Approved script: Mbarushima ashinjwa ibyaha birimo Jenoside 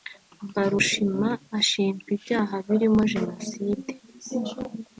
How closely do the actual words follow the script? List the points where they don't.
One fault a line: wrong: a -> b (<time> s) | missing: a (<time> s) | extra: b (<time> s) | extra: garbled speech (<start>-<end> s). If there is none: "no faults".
no faults